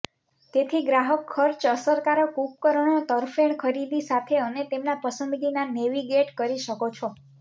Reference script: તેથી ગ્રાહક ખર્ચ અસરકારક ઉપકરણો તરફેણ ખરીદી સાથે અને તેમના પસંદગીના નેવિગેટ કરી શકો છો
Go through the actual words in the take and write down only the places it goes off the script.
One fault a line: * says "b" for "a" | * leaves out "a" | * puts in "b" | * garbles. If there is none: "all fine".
all fine